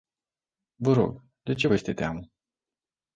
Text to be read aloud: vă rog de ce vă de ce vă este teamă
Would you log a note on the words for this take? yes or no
yes